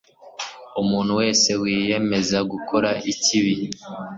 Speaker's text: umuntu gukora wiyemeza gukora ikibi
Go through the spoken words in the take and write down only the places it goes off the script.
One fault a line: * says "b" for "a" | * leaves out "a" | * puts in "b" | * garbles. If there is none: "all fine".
* says "wese" for "gukora"